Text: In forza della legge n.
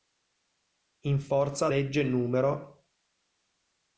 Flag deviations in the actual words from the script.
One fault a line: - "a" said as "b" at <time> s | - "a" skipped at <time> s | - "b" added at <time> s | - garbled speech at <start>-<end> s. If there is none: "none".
- "della" skipped at 1.7 s